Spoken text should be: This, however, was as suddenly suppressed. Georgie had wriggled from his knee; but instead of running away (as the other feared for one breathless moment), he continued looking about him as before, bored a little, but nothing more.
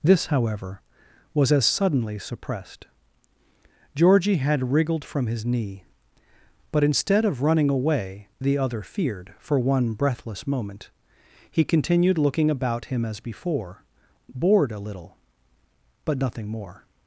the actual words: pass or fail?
fail